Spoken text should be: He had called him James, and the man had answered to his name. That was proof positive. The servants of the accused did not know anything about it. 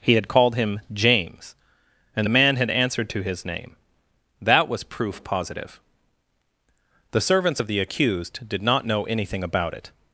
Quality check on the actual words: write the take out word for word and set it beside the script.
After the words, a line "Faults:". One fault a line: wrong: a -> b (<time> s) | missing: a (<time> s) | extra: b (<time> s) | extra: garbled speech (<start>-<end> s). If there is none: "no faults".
He had called him James, and the man had answered to his name. That was proof positive. The servants of the accused did not know anything about it.
Faults:
no faults